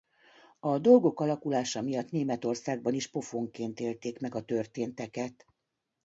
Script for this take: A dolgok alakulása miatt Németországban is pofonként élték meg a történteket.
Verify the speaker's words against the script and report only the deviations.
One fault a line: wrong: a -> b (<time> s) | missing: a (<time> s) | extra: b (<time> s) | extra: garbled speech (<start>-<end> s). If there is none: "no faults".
no faults